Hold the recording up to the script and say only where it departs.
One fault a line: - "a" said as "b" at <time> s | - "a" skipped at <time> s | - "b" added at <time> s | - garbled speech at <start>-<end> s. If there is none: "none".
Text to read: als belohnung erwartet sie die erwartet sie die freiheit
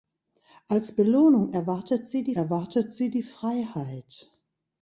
none